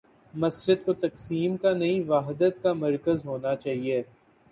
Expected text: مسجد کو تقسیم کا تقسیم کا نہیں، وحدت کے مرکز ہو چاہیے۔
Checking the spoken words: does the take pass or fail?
fail